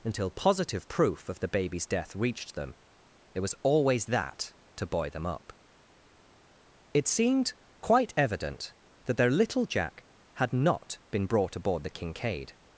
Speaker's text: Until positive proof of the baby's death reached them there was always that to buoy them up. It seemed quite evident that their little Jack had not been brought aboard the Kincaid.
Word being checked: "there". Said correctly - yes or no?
no